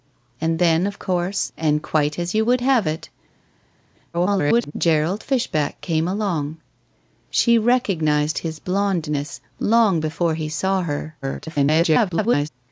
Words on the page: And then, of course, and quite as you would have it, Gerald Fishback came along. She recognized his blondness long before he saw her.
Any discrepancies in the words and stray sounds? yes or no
yes